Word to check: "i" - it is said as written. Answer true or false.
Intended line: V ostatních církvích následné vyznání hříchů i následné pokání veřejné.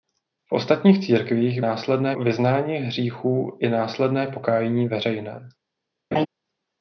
true